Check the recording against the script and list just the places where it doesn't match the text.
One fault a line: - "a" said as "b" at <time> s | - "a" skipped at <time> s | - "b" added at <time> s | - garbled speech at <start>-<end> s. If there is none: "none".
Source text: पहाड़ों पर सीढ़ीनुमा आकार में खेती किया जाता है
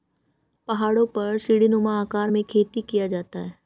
none